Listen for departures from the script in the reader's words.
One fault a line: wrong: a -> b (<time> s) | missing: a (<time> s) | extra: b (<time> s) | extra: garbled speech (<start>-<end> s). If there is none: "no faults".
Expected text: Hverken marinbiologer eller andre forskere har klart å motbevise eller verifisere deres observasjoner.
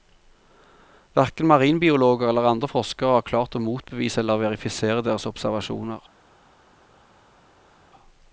no faults